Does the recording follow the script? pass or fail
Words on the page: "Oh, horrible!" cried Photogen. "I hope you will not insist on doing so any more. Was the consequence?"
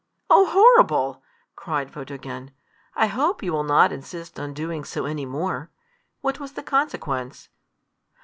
fail